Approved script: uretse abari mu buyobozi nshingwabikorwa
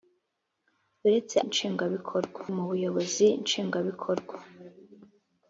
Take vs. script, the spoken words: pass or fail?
fail